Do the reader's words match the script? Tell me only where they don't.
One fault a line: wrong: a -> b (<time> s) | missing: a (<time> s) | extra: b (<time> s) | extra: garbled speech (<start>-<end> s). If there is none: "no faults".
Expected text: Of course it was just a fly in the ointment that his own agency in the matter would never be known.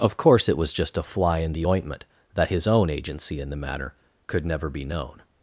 wrong: would -> could (4.3 s)